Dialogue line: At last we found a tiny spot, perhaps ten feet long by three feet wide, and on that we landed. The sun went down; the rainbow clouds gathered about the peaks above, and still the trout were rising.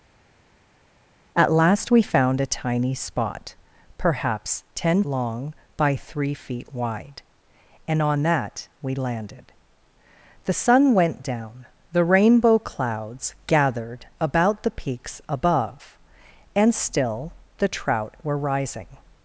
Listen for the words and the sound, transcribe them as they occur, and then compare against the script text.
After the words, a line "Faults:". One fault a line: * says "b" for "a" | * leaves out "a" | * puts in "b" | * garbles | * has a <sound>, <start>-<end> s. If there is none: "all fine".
At last we found a tiny spot, perhaps ten long by three feet wide, and on that we landed. The sun went down; the rainbow clouds gathered about the peaks above, and still the trout were rising.
Faults:
* leaves out "feet"